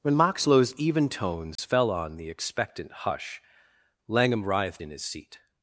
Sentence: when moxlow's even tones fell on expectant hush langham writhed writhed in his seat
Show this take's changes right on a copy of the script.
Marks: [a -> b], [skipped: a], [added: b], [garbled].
when moxlow's even tones fell on [added: the] expectant hush langham writhed [skipped: writhed] in his seat